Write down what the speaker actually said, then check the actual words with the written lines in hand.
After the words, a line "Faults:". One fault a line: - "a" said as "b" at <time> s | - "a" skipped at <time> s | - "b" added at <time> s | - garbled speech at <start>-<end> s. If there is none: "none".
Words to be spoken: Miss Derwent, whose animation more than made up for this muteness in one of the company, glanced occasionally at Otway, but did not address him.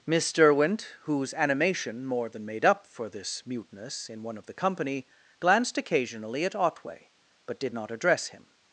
Miss Derwent, whose animation more than made up for this muteness in one of the company, glanced occasionally at Otway, but did not address him.
Faults:
none